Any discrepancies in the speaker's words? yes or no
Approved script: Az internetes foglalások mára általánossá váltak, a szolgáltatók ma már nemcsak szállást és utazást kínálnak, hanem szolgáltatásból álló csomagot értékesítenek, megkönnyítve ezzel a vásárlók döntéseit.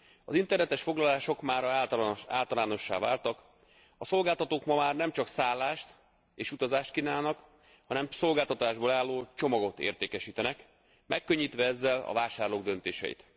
no